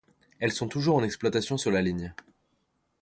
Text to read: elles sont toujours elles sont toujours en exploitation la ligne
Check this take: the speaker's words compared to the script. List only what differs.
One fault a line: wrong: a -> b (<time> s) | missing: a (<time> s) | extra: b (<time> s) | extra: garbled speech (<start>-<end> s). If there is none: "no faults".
missing: elles sont toujours (0.9 s)
extra: sur (1.6 s)